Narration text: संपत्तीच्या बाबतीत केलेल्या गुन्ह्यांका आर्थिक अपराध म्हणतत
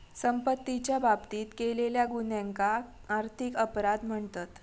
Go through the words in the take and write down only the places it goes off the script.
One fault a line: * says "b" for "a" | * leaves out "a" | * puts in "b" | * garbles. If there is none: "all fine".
all fine